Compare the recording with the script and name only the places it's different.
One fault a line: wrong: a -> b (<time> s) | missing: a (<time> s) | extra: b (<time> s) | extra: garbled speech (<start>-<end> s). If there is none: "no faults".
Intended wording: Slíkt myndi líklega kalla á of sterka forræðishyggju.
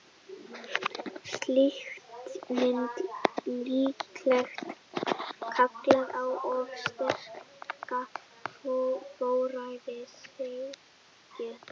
no faults